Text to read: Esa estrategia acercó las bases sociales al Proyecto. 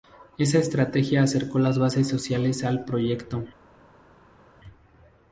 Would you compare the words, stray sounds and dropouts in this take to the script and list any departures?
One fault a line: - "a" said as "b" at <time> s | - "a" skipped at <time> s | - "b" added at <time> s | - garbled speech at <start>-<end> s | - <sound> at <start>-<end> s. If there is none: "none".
none